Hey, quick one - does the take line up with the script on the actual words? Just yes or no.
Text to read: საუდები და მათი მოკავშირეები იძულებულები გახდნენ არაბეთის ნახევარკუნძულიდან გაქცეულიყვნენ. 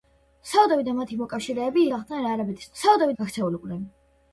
no